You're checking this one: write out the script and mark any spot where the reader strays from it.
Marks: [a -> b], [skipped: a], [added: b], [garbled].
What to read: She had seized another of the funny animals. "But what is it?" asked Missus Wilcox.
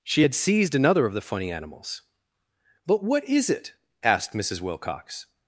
She had seized another of the funny animals. "But what is it?" asked Missus Wilcox.